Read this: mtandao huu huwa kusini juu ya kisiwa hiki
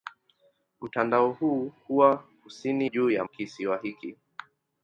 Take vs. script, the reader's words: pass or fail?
pass